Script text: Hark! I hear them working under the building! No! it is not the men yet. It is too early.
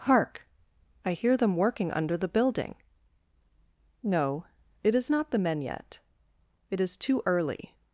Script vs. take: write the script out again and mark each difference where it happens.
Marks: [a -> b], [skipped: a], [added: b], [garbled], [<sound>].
Hark! I hear them working under the building! No! it is not the men yet. It is too early.